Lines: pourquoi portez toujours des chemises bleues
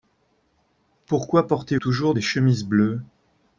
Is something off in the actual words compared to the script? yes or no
no